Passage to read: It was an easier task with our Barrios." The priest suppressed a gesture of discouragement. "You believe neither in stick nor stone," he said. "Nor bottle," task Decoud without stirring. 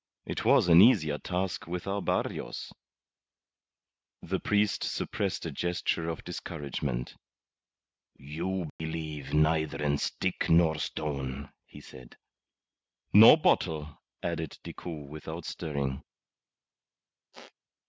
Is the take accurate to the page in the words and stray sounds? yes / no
no